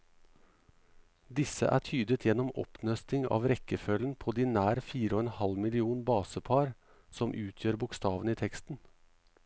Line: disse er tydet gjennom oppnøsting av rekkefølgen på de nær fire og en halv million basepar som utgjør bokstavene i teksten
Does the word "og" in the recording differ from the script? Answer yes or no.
no